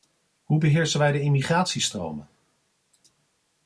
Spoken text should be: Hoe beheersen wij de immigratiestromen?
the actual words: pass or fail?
pass